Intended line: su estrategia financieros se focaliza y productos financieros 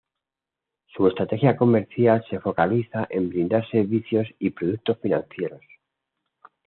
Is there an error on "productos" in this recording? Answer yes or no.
no